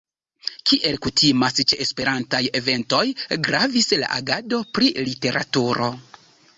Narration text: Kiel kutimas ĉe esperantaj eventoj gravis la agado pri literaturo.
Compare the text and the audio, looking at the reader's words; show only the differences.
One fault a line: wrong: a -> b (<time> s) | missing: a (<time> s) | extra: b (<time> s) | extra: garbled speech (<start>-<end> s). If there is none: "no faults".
no faults